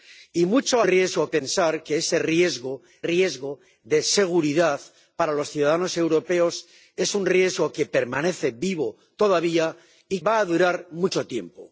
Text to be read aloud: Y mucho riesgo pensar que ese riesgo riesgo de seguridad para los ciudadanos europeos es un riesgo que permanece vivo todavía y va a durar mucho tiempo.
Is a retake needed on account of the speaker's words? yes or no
no